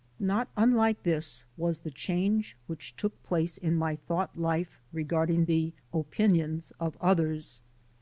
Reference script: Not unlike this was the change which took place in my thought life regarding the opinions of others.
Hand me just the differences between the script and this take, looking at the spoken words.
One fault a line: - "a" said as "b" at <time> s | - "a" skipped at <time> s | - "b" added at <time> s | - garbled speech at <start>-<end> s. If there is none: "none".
none